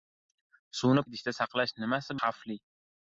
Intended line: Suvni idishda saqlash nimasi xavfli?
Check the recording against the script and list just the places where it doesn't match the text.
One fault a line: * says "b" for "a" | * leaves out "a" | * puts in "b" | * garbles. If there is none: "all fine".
all fine